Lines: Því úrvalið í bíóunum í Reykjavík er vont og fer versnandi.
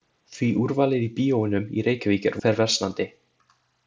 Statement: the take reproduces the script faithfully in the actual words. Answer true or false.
false